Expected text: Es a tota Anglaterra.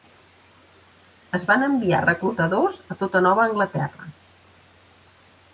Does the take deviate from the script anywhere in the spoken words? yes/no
yes